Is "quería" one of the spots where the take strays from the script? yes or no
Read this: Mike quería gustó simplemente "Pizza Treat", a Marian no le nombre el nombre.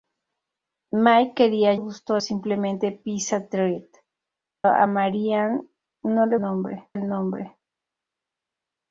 no